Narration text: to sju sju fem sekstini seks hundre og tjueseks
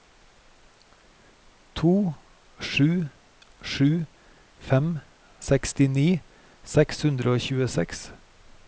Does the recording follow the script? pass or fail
pass